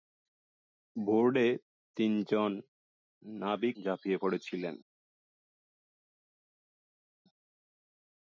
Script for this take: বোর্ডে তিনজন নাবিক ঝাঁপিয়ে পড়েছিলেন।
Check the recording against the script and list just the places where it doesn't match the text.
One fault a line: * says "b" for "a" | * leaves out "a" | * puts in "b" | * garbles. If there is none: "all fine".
all fine